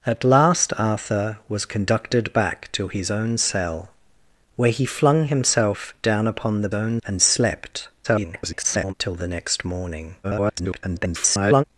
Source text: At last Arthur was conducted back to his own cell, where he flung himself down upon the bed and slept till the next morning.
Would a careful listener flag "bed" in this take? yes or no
yes